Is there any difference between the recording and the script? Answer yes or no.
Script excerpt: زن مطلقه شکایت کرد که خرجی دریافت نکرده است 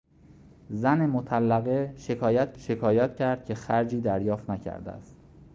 yes